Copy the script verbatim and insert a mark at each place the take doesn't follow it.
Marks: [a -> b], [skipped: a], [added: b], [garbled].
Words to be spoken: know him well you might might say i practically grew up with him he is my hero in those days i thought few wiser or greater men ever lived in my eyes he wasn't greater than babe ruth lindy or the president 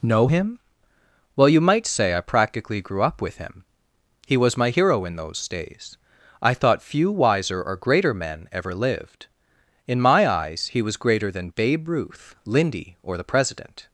know him well you might [skipped: might] say i practically grew up with him he [is -> was] my hero in those days i thought few wiser or greater men ever lived in my eyes he [wasn't -> was] greater than babe ruth lindy or the president